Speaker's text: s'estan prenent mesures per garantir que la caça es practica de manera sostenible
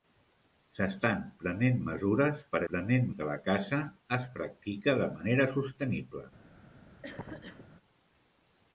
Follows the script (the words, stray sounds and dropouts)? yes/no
no